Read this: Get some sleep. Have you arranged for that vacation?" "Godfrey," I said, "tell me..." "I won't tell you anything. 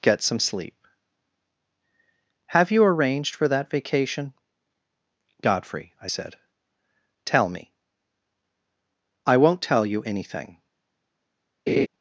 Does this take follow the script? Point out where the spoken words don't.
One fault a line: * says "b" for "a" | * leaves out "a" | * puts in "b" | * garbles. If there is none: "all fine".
all fine